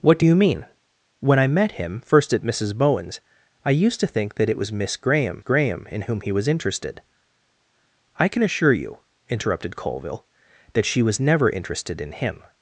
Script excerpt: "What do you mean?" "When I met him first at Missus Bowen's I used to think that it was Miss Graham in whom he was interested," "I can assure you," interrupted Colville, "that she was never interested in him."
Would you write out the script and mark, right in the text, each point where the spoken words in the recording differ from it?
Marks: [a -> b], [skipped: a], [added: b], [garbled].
"What do you mean?" "When I met him first at Missus Bowen's I used to think that it was Miss Graham [added: Graham] in whom he was interested," "I can assure you," interrupted Colville, "that she was never interested in him."